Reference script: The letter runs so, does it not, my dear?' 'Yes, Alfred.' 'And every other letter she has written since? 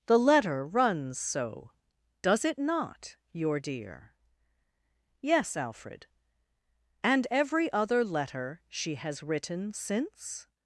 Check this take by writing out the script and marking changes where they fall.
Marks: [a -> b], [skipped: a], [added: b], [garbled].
The letter runs so, does it not, [my -> your] dear?' 'Yes, Alfred.' 'And every other letter she has written since?